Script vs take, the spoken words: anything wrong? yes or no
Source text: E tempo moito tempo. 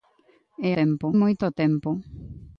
no